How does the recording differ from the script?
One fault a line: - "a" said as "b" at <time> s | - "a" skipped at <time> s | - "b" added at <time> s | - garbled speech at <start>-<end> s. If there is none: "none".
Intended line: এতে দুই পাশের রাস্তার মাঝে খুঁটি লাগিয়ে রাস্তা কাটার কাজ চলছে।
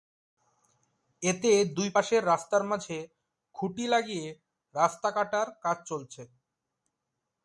none